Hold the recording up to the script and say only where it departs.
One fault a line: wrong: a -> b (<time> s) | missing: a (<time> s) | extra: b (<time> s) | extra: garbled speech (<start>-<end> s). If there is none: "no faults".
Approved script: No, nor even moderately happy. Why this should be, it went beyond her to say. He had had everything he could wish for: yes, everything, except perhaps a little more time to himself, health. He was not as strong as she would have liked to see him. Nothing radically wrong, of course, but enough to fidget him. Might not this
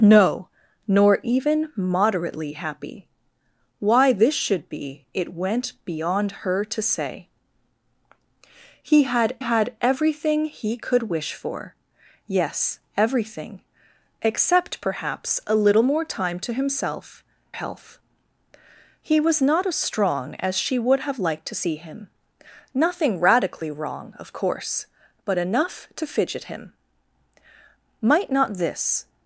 no faults